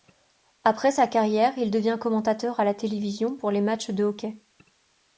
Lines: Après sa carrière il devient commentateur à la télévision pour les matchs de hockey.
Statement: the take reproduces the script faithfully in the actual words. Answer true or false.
true